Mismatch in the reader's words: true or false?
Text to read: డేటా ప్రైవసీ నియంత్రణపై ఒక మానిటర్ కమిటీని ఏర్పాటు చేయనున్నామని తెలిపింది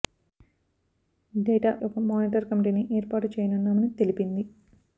true